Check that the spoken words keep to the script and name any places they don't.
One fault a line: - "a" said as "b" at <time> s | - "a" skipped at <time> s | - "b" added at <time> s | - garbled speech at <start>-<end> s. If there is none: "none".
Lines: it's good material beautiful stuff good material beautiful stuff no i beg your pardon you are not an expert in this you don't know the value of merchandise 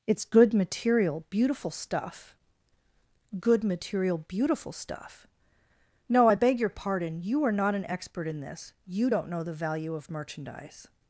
none